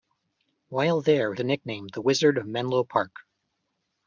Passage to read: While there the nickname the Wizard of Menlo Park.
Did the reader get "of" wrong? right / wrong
right